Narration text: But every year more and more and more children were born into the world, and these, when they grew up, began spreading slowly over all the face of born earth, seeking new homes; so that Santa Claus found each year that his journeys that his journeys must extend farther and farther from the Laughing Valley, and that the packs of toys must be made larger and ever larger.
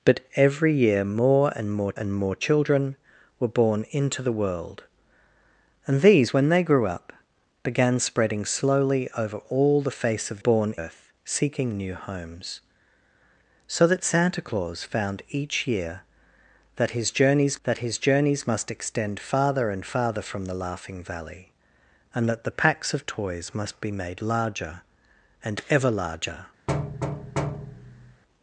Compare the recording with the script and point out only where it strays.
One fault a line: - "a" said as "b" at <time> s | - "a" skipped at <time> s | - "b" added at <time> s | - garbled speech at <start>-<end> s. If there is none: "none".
none